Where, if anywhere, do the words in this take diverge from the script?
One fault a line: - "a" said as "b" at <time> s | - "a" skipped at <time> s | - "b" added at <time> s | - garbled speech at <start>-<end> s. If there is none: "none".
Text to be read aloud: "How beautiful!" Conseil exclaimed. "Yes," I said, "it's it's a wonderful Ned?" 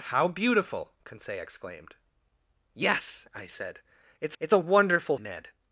none